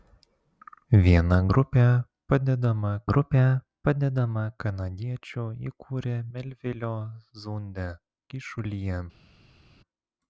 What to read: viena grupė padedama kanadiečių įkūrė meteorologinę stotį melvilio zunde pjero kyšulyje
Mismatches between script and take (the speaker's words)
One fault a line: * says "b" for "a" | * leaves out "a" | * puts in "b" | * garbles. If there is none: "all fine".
* puts in "grupė padedama"
* leaves out "meteorologinę stotį"
* leaves out "pjero"